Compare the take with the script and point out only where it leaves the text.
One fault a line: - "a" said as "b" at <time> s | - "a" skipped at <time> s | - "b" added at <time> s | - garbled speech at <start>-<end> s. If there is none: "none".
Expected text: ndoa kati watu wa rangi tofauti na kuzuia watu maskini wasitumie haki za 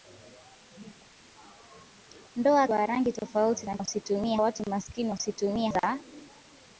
- "kati watu" skipped at 2.7 s
- "kuzuia" said as "wasitumie" at 3.8 s
- "haki" skipped at 5.7 s